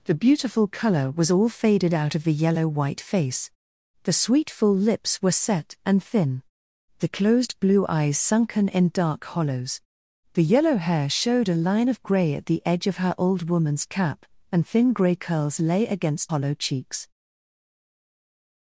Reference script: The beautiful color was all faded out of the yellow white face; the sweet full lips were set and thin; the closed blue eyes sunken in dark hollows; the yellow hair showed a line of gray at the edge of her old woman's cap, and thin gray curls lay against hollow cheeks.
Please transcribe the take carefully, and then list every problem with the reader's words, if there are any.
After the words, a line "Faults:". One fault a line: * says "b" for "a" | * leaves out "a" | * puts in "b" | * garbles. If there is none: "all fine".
The beautiful color was all faded out of the yellow white face; the sweet full lips were set and thin; the closed blue eyes sunken in dark hollows; the yellow hair showed a line of gray at the edge of her old woman's cap, and thin gray curls lay against hollow cheeks.
Faults:
all fine